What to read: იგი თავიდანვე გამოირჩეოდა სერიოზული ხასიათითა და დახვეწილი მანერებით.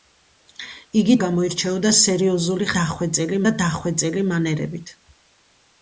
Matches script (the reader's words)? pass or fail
fail